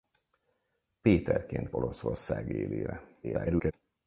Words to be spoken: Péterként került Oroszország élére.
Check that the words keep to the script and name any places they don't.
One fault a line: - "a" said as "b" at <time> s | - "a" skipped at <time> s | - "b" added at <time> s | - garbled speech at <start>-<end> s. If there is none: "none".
- "került" skipped at 1.7 s
- garbled speech at 3.2-3.7 s